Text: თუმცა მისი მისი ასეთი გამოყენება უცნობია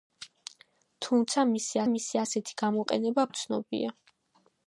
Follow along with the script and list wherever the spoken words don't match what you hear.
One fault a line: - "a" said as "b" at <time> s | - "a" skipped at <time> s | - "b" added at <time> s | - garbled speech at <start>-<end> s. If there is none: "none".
none